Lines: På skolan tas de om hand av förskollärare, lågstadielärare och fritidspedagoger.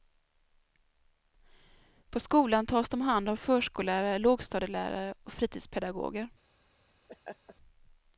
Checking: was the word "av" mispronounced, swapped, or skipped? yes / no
no